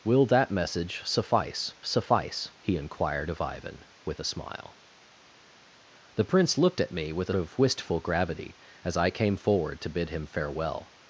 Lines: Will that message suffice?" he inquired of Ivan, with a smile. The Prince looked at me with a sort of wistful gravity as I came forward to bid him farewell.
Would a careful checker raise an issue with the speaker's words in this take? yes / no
yes